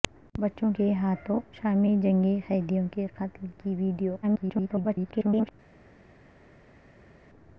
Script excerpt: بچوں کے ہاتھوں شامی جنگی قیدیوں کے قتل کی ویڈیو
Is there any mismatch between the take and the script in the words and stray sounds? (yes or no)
yes